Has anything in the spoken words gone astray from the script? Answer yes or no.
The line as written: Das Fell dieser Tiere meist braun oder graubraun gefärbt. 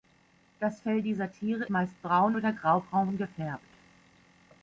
no